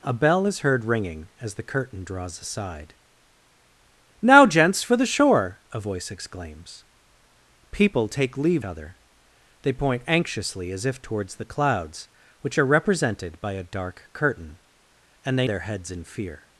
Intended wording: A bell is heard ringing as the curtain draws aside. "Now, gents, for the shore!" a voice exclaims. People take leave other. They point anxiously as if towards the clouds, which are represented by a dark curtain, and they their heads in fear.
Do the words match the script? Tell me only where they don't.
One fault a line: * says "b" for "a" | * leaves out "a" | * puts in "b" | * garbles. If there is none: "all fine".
all fine